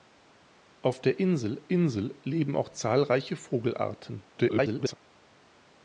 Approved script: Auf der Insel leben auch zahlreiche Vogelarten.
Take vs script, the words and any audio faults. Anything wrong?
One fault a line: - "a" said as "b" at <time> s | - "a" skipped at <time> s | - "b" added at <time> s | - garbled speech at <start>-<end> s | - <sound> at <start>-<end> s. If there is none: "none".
- "Insel" added at 1.7 s
- garbled speech at 4.3-4.9 s